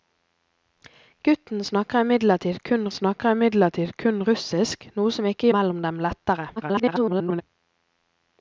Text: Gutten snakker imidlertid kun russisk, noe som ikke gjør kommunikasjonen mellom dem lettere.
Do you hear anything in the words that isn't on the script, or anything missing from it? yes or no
yes